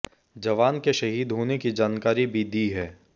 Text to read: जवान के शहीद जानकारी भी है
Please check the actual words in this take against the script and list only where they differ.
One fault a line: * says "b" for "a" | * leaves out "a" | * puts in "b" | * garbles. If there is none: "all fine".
* puts in "होने की"
* puts in "दी"